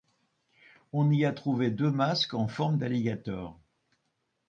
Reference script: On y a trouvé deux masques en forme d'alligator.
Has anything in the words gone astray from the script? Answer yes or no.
no